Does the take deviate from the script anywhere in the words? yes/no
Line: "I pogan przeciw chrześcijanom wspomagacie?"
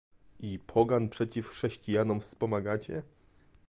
no